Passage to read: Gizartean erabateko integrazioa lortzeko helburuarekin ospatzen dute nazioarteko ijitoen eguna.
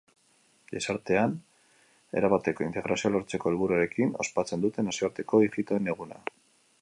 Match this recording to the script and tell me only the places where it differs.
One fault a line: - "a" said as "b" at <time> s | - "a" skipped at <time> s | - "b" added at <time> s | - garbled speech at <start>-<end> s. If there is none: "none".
none